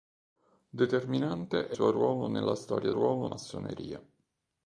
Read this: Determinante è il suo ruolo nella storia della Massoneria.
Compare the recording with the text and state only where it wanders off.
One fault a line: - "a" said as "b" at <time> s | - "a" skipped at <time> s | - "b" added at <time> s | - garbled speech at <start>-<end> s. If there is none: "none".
- "il" skipped at 1.8 s
- "della" said as "ruolo" at 2.9 s